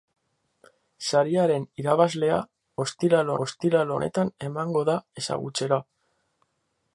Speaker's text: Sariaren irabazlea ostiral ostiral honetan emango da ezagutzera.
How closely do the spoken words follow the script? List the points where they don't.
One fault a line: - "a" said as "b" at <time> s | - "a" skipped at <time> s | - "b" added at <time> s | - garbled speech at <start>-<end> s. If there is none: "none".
none